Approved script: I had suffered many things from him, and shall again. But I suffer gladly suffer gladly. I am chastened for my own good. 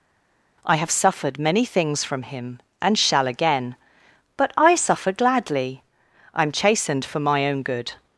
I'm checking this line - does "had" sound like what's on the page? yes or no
no